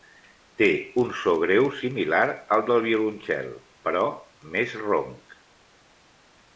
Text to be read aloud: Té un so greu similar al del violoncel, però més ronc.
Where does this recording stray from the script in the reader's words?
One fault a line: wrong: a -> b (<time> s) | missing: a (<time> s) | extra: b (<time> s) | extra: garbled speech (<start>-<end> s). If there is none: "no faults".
no faults